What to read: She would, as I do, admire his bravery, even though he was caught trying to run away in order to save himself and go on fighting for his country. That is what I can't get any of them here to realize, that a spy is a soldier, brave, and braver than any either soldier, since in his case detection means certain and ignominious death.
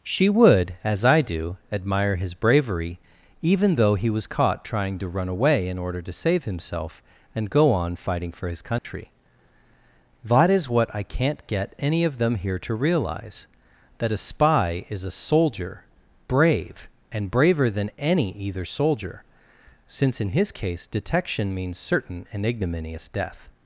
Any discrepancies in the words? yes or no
no